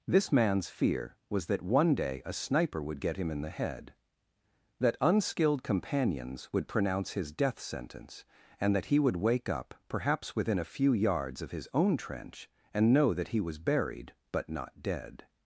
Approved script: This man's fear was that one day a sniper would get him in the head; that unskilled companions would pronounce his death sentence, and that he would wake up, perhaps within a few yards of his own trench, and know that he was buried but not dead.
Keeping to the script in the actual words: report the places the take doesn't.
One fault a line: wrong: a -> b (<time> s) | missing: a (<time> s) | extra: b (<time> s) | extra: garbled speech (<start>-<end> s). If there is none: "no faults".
no faults